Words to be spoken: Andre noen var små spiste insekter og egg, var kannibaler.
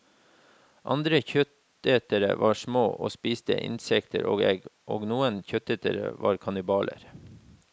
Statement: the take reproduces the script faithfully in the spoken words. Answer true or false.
false